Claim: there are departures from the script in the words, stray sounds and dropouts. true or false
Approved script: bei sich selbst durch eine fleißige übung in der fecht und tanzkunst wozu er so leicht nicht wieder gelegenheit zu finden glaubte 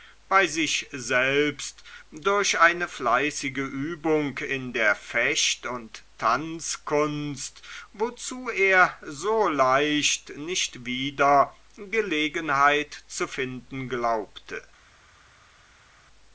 false